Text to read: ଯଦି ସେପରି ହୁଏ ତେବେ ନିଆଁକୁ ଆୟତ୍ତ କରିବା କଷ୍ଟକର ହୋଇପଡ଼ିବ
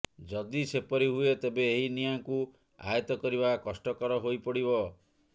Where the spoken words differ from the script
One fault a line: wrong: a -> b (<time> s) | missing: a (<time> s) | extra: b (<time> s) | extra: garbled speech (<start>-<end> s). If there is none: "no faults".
extra: ଏହି (1.7 s)